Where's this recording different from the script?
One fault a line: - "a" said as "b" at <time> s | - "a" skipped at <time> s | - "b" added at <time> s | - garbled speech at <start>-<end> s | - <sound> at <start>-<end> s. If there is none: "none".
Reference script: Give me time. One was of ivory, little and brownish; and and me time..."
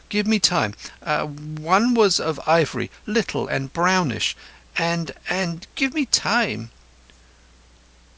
- "give" added at 5.7 s